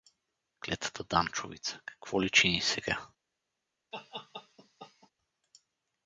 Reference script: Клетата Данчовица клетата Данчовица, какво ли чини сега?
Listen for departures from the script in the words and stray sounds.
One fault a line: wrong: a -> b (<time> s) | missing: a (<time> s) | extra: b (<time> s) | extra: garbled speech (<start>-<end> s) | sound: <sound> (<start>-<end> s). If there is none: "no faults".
missing: клетата Данчовица (1.8 s)
sound: laugh (3.9-5.1 s)